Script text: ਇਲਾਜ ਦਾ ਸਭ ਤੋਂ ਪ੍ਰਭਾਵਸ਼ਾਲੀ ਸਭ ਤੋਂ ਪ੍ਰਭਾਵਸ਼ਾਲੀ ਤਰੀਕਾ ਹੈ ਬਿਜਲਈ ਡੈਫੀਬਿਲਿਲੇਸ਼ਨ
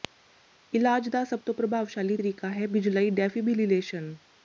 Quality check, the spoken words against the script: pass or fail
fail